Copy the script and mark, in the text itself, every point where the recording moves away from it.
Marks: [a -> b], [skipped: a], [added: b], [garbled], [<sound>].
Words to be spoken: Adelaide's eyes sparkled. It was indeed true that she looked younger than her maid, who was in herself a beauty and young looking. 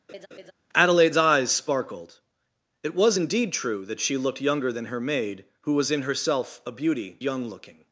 [laugh] Adelaide's eyes sparkled. It was indeed true that she looked younger than her maid, who was in herself a beauty [skipped: and] young looking.